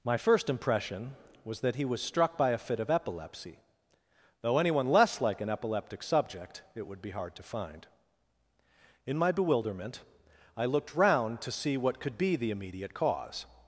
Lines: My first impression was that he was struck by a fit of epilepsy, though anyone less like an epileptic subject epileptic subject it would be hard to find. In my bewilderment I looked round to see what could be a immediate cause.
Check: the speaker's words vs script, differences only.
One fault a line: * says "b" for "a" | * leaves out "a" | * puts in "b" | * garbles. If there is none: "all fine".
* leaves out "epileptic subject"
* says "the" for "a"